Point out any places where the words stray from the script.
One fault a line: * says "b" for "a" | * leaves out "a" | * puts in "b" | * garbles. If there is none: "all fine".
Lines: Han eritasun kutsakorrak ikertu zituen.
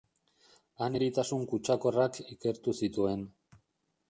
all fine